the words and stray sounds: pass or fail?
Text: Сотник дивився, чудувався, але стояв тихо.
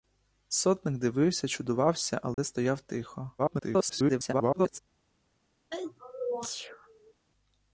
fail